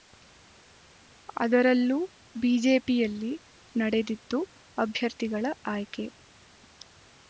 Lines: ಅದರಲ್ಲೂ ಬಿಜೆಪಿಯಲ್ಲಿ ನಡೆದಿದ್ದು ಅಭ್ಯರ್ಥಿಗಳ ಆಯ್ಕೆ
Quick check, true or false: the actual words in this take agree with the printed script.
true